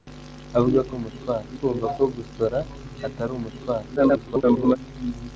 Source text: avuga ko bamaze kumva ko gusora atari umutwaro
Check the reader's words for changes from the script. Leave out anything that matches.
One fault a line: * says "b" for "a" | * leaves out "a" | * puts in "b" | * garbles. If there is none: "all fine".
* says "umutwaro" for "bamaze"
* garbles